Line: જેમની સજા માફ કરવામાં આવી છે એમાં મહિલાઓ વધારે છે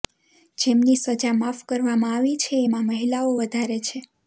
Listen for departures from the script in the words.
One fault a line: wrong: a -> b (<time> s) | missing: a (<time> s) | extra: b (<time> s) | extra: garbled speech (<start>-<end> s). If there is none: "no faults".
no faults